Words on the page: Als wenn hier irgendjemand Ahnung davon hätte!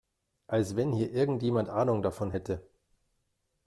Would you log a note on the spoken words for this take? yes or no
no